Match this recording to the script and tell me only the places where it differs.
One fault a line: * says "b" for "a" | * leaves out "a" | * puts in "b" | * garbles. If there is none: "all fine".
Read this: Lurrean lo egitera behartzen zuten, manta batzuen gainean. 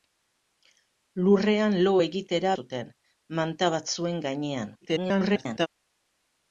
* leaves out "behartzen"
* garbles